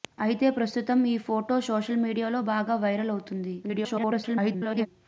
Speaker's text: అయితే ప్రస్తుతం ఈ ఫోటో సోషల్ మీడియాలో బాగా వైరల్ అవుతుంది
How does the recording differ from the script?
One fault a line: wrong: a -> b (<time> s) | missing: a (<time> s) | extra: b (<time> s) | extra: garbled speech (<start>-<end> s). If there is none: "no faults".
extra: garbled speech (3.6-4.9 s)